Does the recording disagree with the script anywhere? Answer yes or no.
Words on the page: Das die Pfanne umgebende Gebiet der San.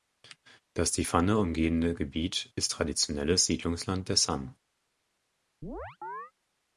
yes